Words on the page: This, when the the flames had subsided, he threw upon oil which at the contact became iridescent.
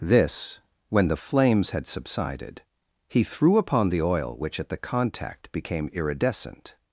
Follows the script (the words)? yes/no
no